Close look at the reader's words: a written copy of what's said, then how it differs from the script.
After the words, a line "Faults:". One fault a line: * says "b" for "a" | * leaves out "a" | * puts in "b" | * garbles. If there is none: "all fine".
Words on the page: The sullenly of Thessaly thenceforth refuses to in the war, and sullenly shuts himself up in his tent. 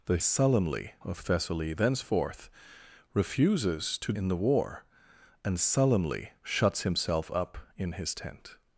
The sullenly of Thessaly thenceforth refuses to in the war, and sullenly shuts himself up in his tent.
Faults:
all fine